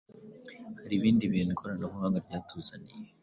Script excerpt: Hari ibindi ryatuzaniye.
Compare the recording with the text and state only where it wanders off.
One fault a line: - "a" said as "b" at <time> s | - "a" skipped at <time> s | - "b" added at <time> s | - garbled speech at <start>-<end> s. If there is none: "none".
- "bintu ikoranabuhanga" added at 1.3 s